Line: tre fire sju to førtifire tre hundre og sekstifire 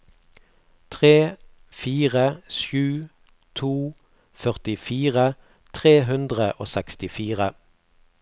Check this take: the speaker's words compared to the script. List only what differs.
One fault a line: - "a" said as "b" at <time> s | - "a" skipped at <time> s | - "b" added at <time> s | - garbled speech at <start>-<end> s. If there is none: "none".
none